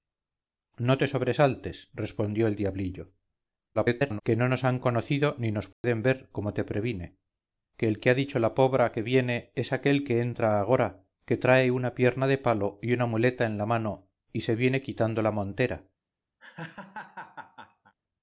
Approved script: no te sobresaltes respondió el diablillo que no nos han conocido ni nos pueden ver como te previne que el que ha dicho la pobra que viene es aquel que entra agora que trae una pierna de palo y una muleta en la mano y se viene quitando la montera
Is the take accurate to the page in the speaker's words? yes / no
no